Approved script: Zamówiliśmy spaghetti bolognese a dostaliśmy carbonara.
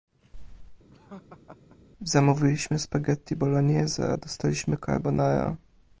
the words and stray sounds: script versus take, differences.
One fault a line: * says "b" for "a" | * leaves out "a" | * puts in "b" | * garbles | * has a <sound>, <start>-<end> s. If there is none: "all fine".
* has a laugh, 0.9-1.8 s